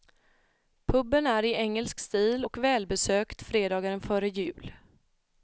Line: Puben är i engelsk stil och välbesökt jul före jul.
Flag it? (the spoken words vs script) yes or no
yes